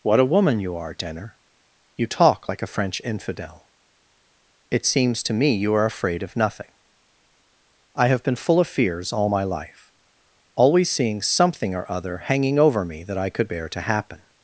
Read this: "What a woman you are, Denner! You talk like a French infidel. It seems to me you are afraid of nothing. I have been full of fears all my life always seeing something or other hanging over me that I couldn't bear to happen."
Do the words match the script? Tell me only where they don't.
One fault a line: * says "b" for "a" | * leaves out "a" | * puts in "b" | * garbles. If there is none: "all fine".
* says "could" for "couldn't"